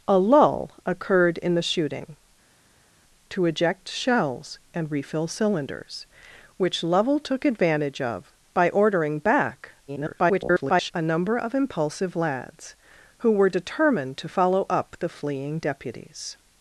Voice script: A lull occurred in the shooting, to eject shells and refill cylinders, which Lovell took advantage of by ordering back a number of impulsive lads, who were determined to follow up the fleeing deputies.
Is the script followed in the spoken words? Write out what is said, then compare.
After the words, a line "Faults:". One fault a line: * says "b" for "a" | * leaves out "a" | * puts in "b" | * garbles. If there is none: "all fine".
A lull occurred in the shooting, to eject shells and refill cylinders, which Lovell took advantage of by ordering back [garbled] a number of impulsive lads, who were determined to follow up the fleeing deputies.
Faults:
* garbles